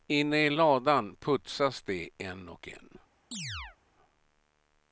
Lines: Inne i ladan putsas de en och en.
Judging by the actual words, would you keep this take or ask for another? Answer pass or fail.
pass